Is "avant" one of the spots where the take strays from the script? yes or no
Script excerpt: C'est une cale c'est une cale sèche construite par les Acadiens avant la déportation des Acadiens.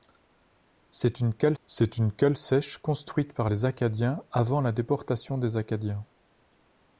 no